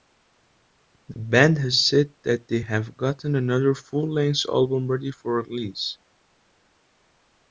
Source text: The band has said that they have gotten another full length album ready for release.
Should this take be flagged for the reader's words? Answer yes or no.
no